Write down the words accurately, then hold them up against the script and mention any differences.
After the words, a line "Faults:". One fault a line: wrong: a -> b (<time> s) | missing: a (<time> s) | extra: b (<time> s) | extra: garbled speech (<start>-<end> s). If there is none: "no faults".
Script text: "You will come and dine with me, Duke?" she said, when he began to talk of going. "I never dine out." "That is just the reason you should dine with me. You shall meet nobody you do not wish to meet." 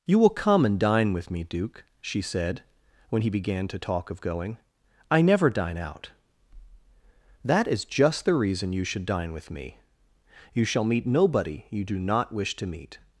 "You will come and dine with me, Duke?" she said, when he began to talk of going. "I never dine out." "That is just the reason you should dine with me. You shall meet nobody you do not wish to meet."
Faults:
no faults